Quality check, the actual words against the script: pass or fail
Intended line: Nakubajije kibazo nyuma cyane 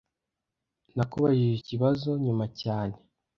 pass